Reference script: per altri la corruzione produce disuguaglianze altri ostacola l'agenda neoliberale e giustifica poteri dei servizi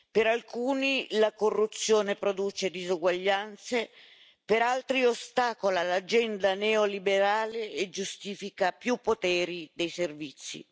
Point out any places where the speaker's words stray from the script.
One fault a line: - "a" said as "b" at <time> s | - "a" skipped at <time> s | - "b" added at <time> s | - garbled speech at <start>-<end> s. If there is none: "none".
- "altri" said as "alcuni" at 0.3 s
- "per" added at 4.5 s
- "più" added at 8.7 s